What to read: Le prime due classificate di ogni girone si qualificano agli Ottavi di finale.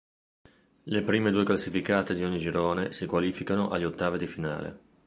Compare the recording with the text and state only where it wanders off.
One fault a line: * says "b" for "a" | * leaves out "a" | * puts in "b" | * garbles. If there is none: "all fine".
all fine